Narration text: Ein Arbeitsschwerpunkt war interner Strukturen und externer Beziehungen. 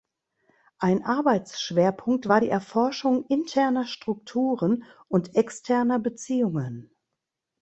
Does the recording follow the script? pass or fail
fail